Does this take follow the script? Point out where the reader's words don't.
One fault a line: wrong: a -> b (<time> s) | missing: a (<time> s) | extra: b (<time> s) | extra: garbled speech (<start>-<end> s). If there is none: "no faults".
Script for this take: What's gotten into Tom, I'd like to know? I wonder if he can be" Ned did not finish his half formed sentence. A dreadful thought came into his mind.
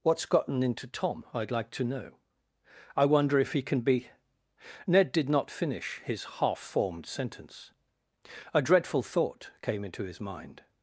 no faults